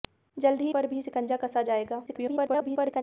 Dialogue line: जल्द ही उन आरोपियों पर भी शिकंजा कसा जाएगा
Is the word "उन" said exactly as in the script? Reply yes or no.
no